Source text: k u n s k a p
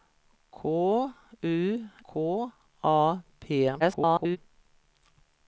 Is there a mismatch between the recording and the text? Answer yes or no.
yes